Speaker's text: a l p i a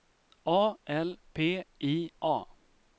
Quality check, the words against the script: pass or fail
pass